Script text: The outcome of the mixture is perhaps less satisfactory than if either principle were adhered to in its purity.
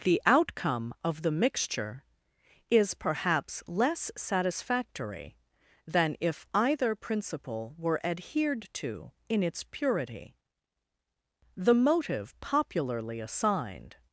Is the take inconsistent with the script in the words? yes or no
yes